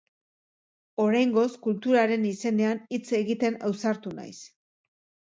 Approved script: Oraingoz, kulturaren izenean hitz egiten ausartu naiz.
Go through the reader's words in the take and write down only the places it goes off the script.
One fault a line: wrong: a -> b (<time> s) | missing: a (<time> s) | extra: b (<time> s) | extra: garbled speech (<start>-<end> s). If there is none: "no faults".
no faults